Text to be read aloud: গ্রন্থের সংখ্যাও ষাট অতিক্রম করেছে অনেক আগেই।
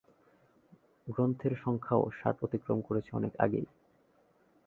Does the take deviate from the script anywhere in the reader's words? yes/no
no